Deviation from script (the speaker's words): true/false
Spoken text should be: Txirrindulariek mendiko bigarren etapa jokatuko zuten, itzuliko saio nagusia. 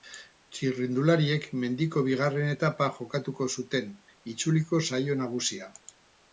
false